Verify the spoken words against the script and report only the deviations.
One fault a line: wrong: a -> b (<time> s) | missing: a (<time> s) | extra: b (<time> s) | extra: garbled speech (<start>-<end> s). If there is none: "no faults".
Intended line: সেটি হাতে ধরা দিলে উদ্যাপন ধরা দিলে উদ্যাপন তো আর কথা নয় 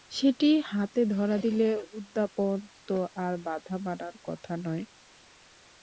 wrong: ধরা দিলে উদ্যাপন তো আর -> তো আর বাধা মানার (2.9 s)